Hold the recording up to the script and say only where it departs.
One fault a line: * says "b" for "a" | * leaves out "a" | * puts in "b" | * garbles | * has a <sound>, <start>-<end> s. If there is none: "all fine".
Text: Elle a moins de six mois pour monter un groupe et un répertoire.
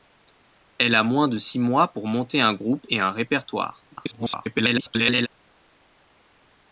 * garbles